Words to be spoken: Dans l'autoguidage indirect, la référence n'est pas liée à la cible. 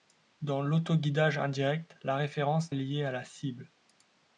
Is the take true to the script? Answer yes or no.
no